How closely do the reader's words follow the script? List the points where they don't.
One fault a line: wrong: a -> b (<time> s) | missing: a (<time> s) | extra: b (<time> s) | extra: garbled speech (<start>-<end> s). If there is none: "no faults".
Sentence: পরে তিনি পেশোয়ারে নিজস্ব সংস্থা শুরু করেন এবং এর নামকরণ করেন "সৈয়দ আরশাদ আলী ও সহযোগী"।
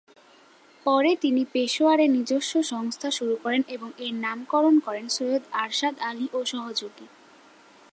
no faults